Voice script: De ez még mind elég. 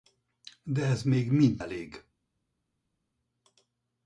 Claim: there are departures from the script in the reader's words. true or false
false